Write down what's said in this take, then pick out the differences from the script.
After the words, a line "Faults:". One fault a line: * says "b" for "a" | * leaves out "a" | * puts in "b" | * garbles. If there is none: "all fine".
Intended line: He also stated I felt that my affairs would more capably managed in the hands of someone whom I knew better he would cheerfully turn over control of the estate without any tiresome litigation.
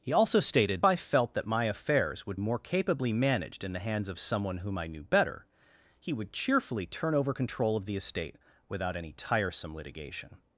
He also stated I felt that my affairs would more capably managed in the hands of someone whom I knew better he would cheerfully turn over control of the estate without any tiresome litigation.
Faults:
all fine